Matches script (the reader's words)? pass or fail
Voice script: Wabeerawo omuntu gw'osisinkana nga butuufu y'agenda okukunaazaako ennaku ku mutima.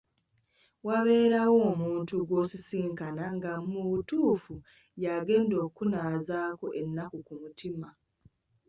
fail